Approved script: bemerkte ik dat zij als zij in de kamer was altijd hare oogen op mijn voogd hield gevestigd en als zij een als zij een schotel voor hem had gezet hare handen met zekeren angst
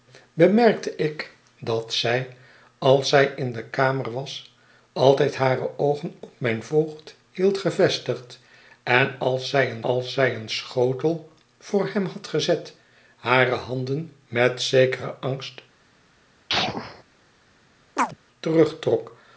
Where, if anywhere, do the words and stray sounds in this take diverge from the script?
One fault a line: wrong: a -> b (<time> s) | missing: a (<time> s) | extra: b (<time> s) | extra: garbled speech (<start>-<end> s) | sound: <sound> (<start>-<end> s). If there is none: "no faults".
sound: sneeze (16.5-17.0 s)
sound: chirp (18.0-18.2 s)